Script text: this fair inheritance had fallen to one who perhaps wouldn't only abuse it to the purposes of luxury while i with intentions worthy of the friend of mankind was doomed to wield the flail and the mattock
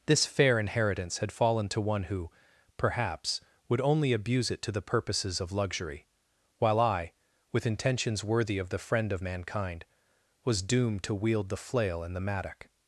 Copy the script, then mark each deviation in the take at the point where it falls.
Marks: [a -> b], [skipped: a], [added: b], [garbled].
this fair inheritance had fallen to one who perhaps [wouldn't -> would] only abuse it to the purposes of luxury while i with intentions worthy of the friend of mankind was doomed to wield the flail and the mattock